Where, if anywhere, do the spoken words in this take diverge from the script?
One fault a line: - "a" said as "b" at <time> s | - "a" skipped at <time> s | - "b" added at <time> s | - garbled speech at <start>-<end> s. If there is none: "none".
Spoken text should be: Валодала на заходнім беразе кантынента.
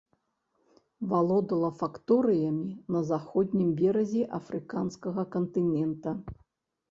- "факторыямі" added at 1.8 s
- "афрыканскага" added at 4.4 s